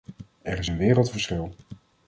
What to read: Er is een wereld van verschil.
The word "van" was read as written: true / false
false